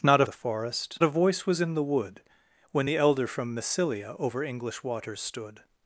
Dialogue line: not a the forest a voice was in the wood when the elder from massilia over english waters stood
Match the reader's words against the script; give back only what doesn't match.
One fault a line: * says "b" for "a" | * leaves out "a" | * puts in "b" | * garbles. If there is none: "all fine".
all fine